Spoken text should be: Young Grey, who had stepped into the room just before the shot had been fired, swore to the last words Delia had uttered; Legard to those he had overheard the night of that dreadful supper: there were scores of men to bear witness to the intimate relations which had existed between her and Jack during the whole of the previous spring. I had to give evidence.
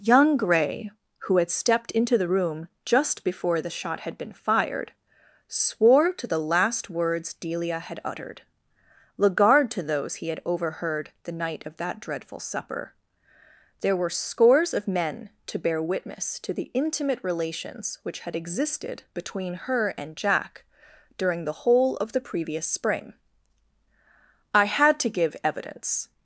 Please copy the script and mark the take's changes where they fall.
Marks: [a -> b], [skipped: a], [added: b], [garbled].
Young Grey, who had stepped into the room just before the shot had been fired, swore to the last words Delia had uttered; Legard to those he had overheard the night of that dreadful supper: there were scores of men to bear witness to the intimate relations which had existed between her and Jack during the whole of the previous spring. I had to give evidence.